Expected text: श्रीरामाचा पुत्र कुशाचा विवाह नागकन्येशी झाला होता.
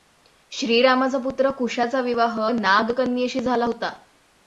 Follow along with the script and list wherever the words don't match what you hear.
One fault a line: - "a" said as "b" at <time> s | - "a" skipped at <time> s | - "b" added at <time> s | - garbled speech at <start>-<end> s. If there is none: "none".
none